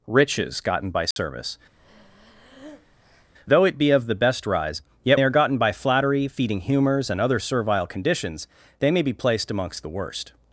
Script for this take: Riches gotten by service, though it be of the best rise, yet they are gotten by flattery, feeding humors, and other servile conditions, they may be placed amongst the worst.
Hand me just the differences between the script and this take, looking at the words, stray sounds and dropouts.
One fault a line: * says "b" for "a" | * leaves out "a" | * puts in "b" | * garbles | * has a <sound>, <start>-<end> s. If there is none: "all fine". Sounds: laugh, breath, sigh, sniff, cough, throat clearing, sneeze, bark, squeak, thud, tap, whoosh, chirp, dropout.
* has a dropout, 1.1-1.2 s
* has a breath, 1.8-3.3 s